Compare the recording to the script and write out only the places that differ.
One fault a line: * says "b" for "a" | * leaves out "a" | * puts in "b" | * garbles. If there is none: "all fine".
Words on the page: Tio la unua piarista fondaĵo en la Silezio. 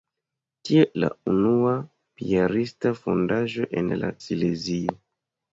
all fine